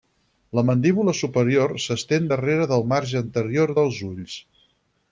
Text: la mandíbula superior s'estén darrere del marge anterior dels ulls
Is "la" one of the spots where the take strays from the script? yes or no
no